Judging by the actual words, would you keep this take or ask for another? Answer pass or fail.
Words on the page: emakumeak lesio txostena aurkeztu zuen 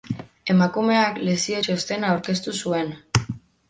pass